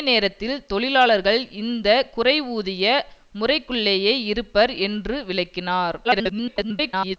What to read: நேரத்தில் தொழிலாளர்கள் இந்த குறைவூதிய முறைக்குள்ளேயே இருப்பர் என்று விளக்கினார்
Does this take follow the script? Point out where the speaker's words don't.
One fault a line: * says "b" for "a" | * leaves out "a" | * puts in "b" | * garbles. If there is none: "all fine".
* garbles